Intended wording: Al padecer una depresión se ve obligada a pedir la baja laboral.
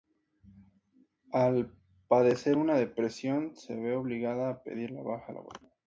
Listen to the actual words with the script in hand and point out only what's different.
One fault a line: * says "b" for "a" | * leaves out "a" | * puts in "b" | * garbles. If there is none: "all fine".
all fine